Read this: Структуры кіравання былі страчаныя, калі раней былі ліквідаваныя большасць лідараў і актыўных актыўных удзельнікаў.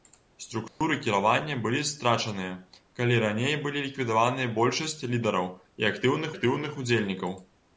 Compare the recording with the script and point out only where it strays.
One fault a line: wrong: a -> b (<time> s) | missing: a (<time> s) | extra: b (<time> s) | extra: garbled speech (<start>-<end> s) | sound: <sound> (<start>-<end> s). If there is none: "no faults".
sound: dropout (0.7-0.8 s)